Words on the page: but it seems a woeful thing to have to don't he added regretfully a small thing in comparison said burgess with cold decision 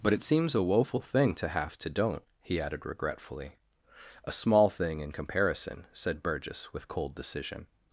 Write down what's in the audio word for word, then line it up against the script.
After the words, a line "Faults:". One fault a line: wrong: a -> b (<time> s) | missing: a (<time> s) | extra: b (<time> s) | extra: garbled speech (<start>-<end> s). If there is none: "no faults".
but it seems a woeful thing to have to don't he added regretfully a small thing in comparison said burgess with cold decision
Faults:
no faults